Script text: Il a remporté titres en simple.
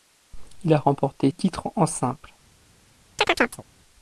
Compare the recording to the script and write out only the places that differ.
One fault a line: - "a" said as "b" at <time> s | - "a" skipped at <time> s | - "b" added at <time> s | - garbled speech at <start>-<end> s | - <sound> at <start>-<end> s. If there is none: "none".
- chirp at 3.2-3.6 s